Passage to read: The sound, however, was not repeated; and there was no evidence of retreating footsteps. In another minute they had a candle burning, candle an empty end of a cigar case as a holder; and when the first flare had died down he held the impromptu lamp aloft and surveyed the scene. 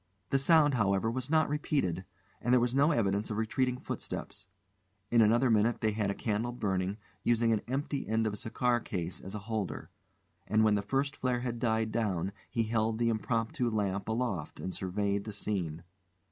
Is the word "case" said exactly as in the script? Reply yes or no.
yes